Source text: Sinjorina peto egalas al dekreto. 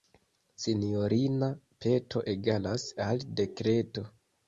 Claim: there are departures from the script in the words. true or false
false